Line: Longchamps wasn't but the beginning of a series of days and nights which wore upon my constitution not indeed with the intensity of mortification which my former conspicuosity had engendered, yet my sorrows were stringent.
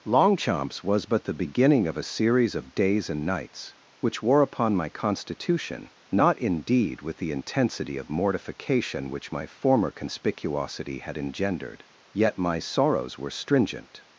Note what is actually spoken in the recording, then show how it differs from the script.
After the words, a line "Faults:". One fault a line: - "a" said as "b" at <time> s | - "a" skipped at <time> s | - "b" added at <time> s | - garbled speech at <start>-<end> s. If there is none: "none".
Longchamps was but the beginning of a series of days and nights which wore upon my constitution not indeed with the intensity of mortification which my former conspicuosity had engendered, yet my sorrows were stringent.
Faults:
- "wasn't" said as "was" at 0.8 s